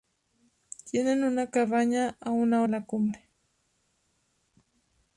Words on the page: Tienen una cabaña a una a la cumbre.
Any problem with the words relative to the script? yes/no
no